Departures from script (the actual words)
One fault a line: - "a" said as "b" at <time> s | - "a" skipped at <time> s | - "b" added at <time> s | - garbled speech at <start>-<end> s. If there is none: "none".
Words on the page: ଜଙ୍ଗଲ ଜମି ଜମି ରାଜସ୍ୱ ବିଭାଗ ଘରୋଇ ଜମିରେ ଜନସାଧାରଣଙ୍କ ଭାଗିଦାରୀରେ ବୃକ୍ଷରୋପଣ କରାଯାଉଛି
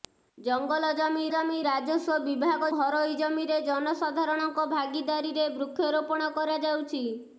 none